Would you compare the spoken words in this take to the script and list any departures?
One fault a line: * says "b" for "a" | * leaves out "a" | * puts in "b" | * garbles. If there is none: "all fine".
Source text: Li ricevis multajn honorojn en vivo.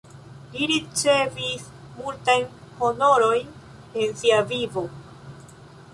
* puts in "sia"